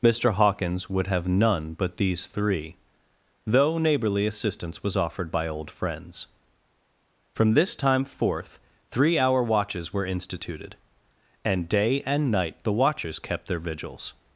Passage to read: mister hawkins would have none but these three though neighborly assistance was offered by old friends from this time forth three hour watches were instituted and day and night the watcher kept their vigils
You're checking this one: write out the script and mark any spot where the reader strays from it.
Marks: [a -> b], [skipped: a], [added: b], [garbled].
mister hawkins would have none but these three though neighborly assistance was offered by old friends from this time forth three hour watches were instituted and day and night the [watcher -> watchers] kept their vigils